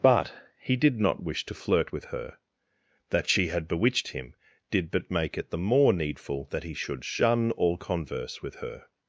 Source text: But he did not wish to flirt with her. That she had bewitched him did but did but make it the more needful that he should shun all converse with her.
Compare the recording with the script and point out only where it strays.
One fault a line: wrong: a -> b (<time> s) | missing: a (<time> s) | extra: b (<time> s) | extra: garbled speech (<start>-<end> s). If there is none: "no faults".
missing: did but (5.1 s)